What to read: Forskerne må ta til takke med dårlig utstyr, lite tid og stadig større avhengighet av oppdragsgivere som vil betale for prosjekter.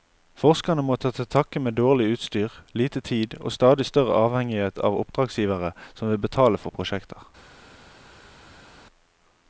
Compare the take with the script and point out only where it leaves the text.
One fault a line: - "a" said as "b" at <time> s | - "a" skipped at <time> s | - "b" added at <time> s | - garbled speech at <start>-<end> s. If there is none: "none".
none